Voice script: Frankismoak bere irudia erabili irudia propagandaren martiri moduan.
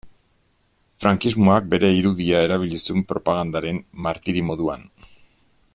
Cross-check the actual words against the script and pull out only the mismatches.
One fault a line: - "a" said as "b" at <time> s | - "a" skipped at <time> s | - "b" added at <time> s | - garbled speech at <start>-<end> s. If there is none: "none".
- "irudia" said as "zuen" at 2.9 s